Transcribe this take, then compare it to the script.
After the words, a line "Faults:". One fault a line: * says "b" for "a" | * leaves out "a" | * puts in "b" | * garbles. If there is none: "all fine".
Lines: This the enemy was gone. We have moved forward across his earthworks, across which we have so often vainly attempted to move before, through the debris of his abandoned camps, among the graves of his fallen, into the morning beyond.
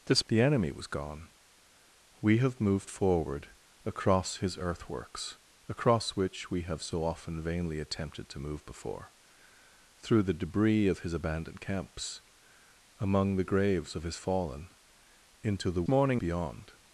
This the enemy was gone. We have moved forward across his earthworks, across which we have so often vainly attempted to move before, through the debris of his abandoned camps, among the graves of his fallen, into the morning beyond.
Faults:
all fine